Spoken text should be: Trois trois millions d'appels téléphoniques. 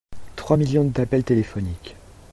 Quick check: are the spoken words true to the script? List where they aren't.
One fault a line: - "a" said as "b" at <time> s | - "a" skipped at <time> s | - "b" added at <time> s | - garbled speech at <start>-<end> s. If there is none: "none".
- "trois" skipped at 0.6 s